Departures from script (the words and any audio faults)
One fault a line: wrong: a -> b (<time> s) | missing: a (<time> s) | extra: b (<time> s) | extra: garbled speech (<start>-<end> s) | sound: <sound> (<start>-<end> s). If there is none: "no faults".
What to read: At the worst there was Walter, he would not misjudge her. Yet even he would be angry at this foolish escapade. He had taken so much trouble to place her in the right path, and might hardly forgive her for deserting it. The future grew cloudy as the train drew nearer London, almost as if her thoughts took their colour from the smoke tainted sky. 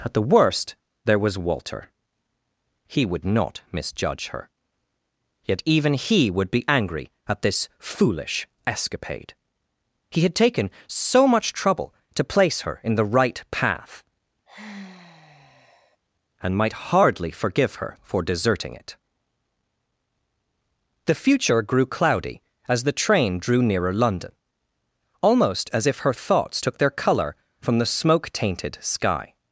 sound: sigh (14.5-16.0 s)